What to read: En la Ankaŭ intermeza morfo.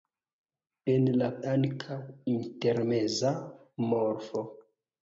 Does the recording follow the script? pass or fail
pass